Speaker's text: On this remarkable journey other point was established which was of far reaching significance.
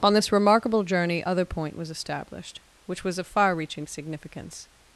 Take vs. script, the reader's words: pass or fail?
pass